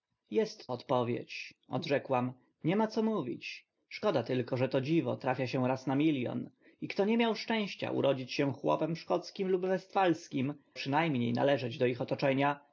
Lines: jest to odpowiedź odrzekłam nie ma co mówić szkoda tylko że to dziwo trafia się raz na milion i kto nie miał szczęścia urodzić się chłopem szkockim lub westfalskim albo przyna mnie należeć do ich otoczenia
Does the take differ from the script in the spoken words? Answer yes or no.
yes